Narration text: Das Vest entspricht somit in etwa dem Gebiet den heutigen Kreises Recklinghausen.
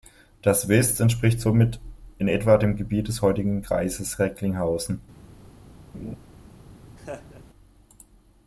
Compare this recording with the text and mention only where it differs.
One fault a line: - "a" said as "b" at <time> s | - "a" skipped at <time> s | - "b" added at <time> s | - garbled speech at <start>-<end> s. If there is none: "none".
- "den" said as "des" at 3.1 s